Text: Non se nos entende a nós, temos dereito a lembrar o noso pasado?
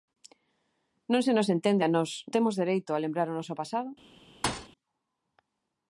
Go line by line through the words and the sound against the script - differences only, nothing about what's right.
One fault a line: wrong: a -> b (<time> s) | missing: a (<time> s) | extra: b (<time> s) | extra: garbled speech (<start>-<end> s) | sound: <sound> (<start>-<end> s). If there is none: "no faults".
sound: thud (4.4-4.7 s)